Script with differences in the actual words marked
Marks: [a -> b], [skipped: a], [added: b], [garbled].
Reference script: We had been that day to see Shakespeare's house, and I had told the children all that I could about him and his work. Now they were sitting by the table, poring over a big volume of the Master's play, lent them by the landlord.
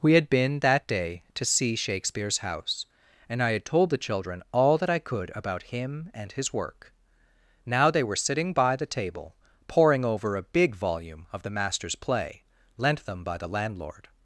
We had been that day to see Shakespeare's house, and I had told the children all that I could about him and his work. Now they were sitting by the table, poring over a big volume of the Master's play, lent them by the landlord.